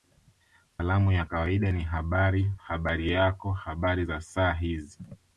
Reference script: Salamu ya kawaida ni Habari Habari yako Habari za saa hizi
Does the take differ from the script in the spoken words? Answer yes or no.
no